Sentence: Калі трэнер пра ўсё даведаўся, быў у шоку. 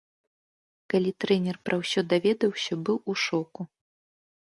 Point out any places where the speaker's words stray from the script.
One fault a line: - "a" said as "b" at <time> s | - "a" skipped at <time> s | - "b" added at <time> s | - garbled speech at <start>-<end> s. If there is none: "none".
none